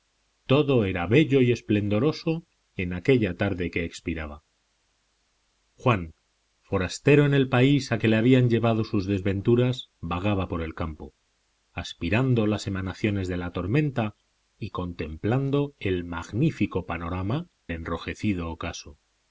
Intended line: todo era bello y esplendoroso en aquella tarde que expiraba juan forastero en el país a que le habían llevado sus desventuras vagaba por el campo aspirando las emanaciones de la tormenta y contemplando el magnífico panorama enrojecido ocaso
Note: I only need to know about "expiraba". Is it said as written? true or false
true